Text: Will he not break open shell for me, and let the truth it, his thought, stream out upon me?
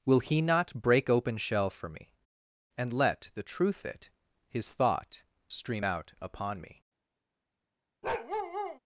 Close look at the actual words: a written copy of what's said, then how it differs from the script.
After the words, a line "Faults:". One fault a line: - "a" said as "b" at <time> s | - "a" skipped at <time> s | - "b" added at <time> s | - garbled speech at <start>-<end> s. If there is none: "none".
Will he not break open shell for me, and let the truth it, his thought, stream out upon me?
Faults:
none